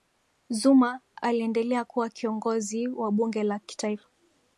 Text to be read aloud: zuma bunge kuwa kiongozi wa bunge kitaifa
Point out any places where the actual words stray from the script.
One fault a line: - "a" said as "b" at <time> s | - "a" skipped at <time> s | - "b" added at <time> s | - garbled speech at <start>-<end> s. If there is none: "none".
- "bunge" said as "aliendelea" at 1.2 s
- "la" added at 3.4 s